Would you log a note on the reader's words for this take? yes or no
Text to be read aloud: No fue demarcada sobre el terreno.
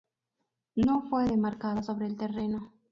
no